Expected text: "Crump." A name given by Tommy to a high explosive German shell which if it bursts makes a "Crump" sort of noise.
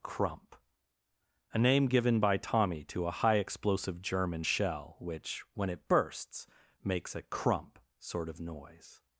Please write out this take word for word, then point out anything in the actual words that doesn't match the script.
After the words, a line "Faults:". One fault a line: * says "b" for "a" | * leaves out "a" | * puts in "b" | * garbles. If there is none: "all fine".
"Crump." A name given by Tommy to a high explosive German shell which when it bursts makes a "Crump" sort of noise.
Faults:
* says "when" for "if"